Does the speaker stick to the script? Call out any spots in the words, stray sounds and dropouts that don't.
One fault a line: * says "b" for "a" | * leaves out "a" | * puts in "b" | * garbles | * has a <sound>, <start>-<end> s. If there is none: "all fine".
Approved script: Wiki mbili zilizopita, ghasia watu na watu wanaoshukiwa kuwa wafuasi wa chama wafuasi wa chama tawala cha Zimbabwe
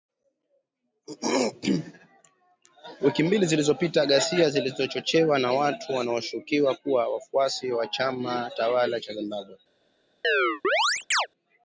* says "zilizochochewa" for "watu"
* leaves out "wafuasi wa chama"
* has a chirp, 10.2-11.3 s